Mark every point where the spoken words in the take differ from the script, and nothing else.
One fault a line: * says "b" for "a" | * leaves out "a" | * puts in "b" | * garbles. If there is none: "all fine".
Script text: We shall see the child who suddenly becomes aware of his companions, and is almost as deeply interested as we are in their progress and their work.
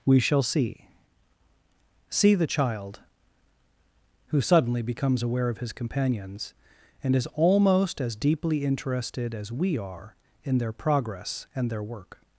* puts in "see"